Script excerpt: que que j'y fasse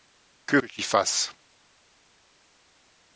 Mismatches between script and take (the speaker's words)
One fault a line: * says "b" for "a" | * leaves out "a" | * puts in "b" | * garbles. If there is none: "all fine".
all fine